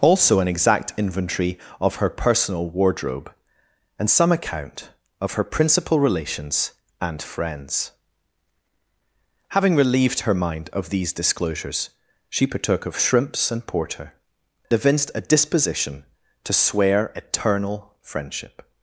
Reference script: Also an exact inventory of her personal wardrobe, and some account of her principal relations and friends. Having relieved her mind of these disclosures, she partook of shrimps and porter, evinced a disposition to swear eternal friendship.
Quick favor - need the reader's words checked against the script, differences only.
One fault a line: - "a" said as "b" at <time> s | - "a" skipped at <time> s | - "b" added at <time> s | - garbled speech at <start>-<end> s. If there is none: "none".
none